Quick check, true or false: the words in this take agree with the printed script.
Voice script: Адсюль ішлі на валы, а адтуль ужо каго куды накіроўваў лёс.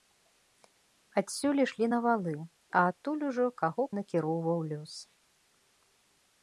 false